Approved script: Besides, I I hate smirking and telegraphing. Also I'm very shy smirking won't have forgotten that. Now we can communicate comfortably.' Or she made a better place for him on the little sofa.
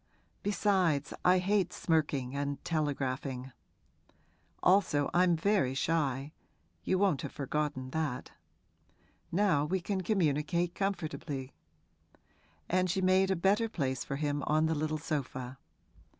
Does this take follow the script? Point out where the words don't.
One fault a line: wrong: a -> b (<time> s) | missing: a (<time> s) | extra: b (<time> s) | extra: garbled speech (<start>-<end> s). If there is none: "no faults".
missing: I (1.4 s)
wrong: smirking -> you (6.8 s)
wrong: Or -> And (12.7 s)